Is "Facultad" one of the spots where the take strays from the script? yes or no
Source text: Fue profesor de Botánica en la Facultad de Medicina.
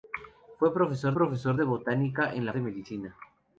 yes